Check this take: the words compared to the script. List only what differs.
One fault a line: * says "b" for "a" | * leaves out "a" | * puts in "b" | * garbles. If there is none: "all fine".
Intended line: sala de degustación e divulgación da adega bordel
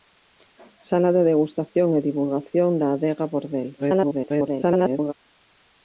* garbles